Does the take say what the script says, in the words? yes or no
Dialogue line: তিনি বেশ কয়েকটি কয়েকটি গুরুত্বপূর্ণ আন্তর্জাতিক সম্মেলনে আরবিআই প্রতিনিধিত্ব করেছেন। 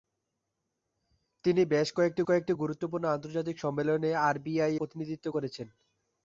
yes